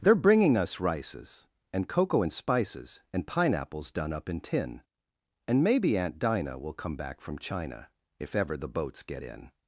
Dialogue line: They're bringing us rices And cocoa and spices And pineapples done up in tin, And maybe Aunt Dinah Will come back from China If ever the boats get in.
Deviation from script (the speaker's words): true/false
false